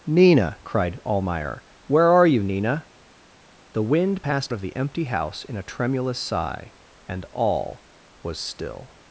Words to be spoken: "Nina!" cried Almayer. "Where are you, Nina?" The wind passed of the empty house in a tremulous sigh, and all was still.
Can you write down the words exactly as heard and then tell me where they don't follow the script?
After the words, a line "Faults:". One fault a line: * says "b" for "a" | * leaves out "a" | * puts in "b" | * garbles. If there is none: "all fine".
"Nina!" cried Almayer. "Where are you, Nina?" The wind passed of the empty house in a tremulous sigh, and all was still.
Faults:
all fine